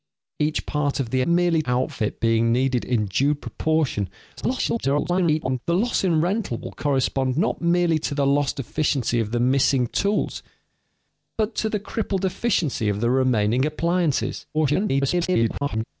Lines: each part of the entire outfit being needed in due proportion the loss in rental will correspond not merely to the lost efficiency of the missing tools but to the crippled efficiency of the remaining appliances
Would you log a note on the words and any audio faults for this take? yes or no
yes